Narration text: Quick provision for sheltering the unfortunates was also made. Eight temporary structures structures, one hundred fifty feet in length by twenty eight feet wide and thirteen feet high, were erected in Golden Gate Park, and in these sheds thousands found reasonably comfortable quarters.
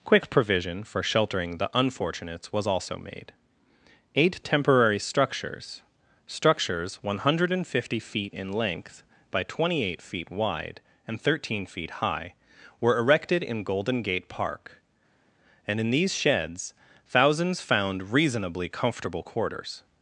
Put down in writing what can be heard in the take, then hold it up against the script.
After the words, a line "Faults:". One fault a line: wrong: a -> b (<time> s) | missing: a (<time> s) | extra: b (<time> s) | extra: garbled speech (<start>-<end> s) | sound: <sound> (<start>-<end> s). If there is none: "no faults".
Quick provision for sheltering the unfortunates was also made. Eight temporary structures structures, one hundred fifty feet in length by twenty eight feet wide and thirteen feet high, were erected in Golden Gate Park, and in these sheds thousands found reasonably comfortable quarters.
Faults:
no faults